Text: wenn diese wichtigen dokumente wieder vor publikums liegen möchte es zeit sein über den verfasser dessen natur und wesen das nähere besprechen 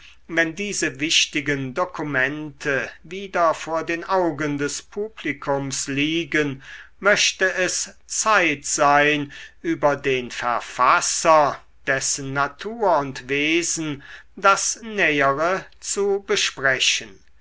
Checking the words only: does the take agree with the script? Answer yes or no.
no